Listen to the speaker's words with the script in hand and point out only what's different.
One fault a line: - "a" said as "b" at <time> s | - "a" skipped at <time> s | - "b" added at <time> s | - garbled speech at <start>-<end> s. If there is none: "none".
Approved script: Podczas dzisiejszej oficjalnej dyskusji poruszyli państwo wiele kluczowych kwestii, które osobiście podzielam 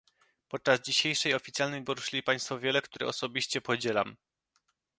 - "dyskusji" skipped at 1.8 s
- "kluczowych kwestii" skipped at 2.8 s